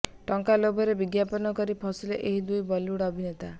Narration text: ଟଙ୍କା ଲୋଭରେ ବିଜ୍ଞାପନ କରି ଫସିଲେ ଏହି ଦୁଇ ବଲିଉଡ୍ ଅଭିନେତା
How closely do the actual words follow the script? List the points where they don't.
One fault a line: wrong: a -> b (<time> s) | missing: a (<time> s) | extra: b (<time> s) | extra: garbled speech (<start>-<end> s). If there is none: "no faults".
no faults